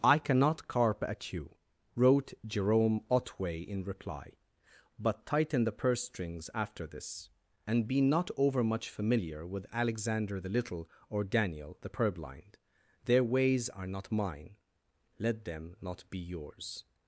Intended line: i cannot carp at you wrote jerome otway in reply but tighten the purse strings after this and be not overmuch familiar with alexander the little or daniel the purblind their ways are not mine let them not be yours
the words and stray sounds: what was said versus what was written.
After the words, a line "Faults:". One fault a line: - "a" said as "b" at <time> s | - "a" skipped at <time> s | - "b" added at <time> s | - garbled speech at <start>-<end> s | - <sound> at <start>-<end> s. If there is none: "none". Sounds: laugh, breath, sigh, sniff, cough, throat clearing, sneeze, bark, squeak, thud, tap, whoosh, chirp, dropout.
i cannot carp at you wrote jerome otway in reply but tighten the purse strings after this and be not overmuch familiar with alexander the little or daniel the purblind their ways are not mine let them not be yours
Faults:
none